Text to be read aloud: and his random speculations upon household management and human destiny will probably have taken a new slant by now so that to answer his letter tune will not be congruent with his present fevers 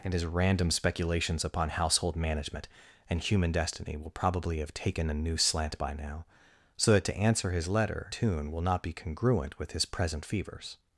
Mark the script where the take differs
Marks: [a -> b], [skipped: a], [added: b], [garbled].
and his random speculations upon household management and human destiny will probably have taken a new slant by now so that to answer his letter tune will not be congruent with his present fevers